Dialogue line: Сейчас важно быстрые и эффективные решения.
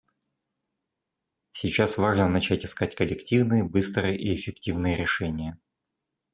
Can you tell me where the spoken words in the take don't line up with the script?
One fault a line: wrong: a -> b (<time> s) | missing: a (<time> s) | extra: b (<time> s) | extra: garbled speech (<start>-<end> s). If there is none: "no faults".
extra: начать искать коллективные (2.3 s)